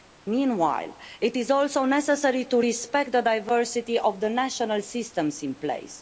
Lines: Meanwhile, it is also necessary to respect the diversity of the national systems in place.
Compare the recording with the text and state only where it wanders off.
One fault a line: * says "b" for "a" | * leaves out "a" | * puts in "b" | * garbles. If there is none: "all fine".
all fine